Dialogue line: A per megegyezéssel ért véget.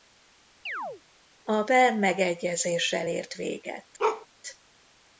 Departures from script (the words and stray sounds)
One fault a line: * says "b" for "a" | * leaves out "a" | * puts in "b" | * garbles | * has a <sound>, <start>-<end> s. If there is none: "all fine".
* has a chirp, 0.7-1.0 s
* has a bark, 4.0-4.3 s